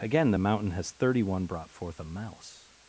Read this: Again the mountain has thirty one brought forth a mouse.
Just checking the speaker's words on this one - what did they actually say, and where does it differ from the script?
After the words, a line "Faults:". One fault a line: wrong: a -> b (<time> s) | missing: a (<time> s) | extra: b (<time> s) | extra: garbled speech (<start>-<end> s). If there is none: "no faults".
Again the mountain has thirty one brought forth a mouse.
Faults:
no faults